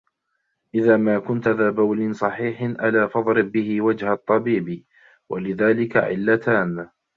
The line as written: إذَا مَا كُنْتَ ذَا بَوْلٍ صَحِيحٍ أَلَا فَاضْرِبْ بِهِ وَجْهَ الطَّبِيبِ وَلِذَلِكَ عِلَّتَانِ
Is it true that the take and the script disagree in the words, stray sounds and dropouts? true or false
false